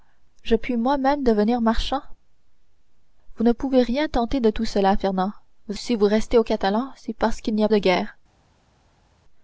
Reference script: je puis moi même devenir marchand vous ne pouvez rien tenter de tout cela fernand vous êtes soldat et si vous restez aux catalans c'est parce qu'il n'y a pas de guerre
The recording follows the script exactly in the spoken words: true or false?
false